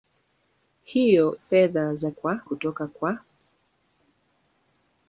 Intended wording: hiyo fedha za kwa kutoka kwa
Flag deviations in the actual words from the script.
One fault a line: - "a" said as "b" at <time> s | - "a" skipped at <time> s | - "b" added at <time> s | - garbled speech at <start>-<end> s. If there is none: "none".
none